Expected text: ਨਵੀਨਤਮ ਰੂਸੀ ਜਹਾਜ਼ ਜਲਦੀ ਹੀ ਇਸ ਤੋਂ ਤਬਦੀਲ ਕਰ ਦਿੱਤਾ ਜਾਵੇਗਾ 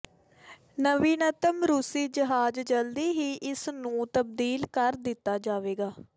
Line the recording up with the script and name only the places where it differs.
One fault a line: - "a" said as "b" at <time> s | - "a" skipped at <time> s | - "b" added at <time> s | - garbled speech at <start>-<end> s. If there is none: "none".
- "ਤੋਂ" said as "ਨੂੰ" at 3.7 s